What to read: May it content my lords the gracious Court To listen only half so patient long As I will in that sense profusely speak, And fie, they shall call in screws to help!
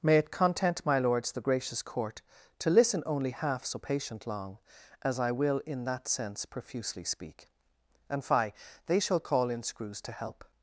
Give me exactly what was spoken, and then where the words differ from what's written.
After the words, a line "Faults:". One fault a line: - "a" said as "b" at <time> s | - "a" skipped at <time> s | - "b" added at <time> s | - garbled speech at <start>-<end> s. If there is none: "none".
May it content my lords the gracious Court To listen only half so patient long As I will in that sense profusely speak, And fie, they shall call in screws to help!
Faults:
none